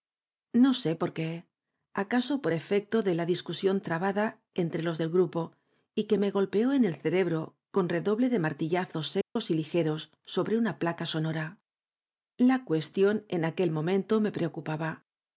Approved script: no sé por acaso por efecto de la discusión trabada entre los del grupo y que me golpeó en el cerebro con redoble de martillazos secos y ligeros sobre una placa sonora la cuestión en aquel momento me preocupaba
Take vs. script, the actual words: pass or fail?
fail